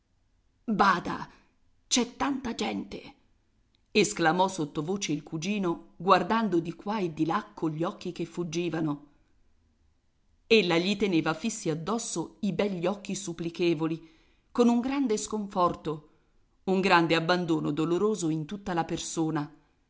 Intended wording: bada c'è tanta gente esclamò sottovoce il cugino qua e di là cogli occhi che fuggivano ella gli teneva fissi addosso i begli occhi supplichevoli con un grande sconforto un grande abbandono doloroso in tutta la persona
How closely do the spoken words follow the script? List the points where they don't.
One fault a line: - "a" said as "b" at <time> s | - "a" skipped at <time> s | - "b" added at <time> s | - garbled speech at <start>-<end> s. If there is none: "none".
- "guardando di" added at 6.0 s